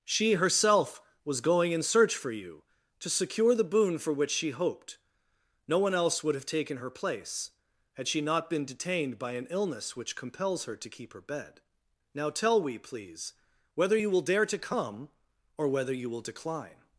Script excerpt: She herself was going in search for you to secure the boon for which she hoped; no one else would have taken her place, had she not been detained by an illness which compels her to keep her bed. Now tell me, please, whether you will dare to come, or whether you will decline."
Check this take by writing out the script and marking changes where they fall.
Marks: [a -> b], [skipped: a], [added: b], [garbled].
She herself was going in search for you to secure the boon for which she hoped; no one else would have taken her place, had she not been detained by an illness which compels her to keep her bed. Now tell [me, -> we] please, whether you will dare to come, or whether you will decline."